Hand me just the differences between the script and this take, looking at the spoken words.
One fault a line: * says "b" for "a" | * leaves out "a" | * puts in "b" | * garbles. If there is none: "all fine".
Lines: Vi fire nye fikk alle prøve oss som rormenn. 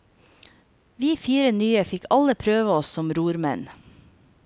all fine